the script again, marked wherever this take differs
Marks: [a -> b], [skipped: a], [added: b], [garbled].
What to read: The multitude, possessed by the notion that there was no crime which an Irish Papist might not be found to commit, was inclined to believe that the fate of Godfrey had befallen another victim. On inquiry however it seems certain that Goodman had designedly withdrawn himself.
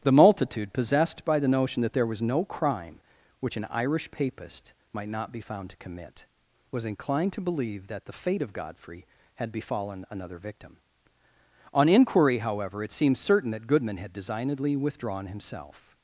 The multitude, possessed by the notion that there was no crime which an Irish Papist might not be found to commit, was inclined to believe that the fate of Godfrey had befallen another victim. On inquiry however it seems certain that Goodman had designedly withdrawn himself.